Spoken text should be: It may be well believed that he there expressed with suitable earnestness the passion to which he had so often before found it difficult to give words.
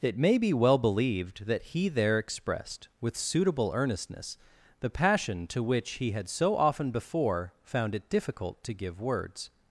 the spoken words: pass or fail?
pass